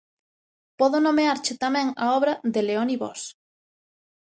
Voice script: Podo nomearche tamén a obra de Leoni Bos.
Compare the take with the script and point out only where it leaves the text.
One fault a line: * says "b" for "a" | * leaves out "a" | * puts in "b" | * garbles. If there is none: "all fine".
all fine